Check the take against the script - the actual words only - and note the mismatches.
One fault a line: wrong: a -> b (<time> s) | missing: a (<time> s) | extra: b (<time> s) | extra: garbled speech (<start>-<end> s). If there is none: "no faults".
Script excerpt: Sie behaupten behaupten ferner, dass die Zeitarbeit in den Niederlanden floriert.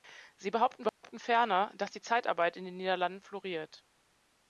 no faults